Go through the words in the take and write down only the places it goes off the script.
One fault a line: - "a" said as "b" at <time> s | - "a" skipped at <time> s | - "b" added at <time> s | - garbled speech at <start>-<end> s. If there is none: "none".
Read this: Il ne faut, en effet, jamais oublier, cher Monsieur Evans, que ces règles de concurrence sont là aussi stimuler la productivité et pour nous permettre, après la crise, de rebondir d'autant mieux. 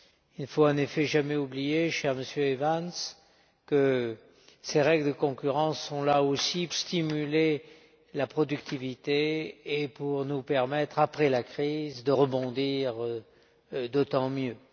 none